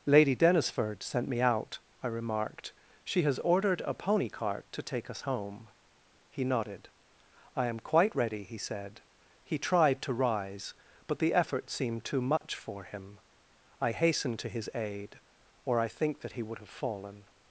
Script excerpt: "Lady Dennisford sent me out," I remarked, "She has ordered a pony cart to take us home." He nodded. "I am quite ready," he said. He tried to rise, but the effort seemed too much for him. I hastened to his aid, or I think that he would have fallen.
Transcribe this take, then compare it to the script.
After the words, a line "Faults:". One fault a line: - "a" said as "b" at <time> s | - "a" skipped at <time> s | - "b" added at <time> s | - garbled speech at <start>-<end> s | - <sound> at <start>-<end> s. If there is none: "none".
"Lady Dennisford sent me out," I remarked, "She has ordered a pony cart to take us home." He nodded. "I am quite ready," he said. He tried to rise, but the effort seemed too much for him. I hastened to his aid, or I think that he would have fallen.
Faults:
- dropout at 12.4-12.4 s